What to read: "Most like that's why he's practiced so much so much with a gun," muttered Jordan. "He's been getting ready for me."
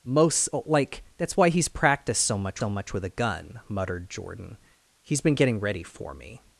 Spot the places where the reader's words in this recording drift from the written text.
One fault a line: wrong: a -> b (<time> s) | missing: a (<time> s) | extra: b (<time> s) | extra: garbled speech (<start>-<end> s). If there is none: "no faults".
no faults